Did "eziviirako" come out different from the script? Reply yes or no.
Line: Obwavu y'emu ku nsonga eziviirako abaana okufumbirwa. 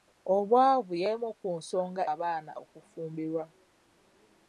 yes